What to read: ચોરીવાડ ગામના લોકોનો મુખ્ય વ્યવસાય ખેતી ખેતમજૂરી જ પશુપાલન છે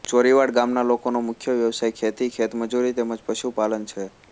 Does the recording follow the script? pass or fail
fail